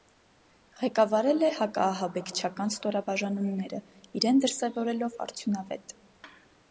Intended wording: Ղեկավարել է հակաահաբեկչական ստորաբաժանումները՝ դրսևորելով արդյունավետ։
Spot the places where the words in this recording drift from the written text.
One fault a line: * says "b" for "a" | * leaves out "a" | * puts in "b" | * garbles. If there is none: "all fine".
* puts in "իրեն"